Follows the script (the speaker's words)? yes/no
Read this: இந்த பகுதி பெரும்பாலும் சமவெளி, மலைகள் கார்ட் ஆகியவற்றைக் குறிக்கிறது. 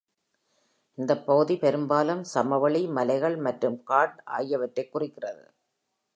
no